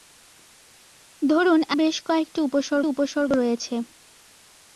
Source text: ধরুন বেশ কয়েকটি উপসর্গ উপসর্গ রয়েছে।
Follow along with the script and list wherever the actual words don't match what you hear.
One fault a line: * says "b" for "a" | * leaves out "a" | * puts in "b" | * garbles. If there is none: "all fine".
all fine